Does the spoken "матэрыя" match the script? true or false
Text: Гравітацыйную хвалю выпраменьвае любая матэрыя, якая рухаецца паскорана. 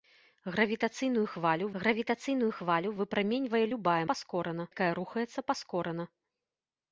false